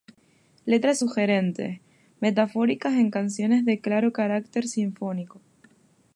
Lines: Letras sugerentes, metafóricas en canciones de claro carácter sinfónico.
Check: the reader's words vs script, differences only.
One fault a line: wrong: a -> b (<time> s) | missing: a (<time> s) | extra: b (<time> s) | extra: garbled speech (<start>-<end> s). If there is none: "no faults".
no faults